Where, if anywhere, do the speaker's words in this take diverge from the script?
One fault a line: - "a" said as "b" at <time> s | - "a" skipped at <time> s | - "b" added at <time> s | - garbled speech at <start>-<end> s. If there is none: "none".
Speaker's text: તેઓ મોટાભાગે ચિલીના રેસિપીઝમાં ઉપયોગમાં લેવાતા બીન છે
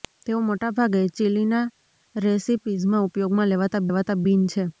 - "લેવાતા" added at 3.9 s